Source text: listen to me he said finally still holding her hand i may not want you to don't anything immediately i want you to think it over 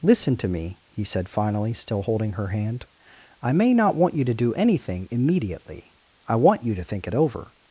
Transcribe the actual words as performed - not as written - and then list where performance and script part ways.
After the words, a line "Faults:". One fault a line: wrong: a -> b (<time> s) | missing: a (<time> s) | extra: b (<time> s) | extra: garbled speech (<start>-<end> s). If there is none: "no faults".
listen to me he said finally still holding her hand i may not want you to do anything immediately i want you to think it over
Faults:
wrong: don't -> do (4.3 s)